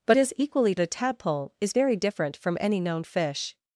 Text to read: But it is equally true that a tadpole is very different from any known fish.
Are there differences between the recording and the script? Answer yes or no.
yes